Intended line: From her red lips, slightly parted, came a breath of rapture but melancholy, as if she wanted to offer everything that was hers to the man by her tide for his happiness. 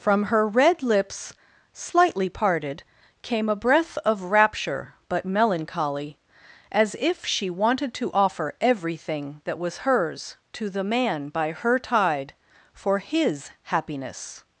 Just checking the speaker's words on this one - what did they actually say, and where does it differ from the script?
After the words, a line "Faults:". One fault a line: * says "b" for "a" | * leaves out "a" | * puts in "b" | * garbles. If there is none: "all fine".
From her red lips, slightly parted, came a breath of rapture but melancholy, as if she wanted to offer everything that was hers to the man by her tide for his happiness.
Faults:
all fine